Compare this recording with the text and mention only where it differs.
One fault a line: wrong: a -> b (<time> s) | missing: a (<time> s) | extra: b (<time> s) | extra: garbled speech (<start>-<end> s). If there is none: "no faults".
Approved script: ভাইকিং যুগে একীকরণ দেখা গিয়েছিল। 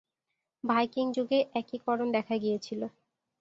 no faults